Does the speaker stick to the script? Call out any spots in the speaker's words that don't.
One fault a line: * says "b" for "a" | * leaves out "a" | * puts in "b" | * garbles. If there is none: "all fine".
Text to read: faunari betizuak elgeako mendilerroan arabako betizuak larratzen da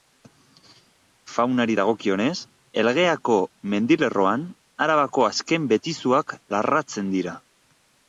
* says "dagokionez" for "betizuak"
* puts in "azken"
* says "dira" for "da"